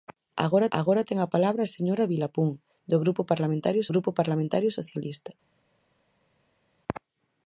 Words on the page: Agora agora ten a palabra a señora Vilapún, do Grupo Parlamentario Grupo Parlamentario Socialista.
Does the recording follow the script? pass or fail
pass